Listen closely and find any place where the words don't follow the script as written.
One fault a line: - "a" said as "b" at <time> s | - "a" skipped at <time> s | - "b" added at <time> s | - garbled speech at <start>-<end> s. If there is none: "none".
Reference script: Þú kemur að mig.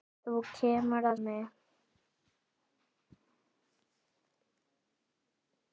none